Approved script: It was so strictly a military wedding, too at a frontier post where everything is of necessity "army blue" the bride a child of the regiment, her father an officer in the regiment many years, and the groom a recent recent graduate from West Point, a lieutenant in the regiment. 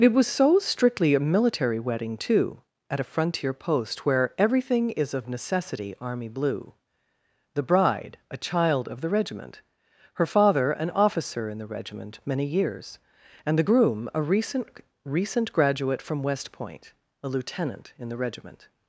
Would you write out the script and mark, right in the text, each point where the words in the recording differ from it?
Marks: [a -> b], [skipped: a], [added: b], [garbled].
It was so strictly a military wedding, too at a frontier post where everything is of necessity "army blue" the bride a child of the regiment, her father an officer in the regiment many years, and the groom a recent recent graduate from West Point, a lieutenant in the regiment.